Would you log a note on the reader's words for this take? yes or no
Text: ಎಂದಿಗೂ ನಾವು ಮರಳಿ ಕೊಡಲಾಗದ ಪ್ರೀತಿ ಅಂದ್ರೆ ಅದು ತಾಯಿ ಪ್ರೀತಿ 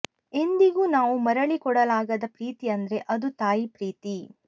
no